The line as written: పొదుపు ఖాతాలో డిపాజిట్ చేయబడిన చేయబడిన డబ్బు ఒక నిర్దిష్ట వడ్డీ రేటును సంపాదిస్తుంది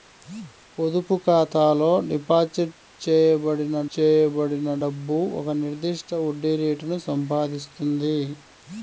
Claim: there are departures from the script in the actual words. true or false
false